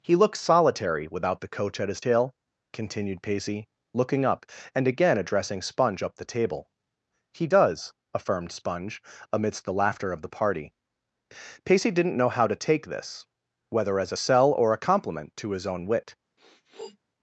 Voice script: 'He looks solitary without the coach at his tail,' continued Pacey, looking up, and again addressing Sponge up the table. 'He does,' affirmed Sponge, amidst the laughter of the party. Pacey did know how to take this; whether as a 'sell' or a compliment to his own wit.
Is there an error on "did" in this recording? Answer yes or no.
yes